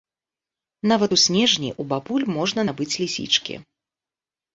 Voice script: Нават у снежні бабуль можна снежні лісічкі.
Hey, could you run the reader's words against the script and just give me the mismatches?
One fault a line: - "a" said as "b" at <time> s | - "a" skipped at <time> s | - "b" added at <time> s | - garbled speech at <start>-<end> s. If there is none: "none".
- "ў" added at 1.7 s
- "снежні" said as "набыць" at 2.7 s